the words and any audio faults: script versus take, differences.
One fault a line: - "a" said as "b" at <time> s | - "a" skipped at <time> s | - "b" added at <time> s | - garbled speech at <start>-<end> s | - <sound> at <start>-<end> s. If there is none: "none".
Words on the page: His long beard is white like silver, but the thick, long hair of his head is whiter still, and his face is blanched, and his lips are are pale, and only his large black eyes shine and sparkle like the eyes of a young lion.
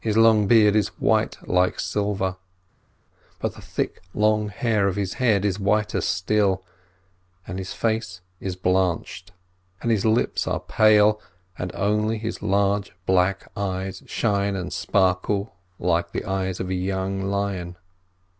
- "are" skipped at 10.6 s